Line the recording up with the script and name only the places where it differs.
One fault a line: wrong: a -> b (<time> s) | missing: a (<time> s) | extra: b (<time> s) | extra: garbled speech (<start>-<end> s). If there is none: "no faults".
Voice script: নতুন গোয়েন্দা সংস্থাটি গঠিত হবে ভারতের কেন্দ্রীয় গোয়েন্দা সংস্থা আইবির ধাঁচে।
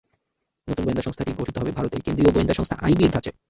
no faults